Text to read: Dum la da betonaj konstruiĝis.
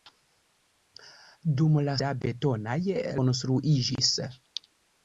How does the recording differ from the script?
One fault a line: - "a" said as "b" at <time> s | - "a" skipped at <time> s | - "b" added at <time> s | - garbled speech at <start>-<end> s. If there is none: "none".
none